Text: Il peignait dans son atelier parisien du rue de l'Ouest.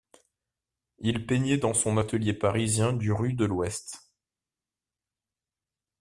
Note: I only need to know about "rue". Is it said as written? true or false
true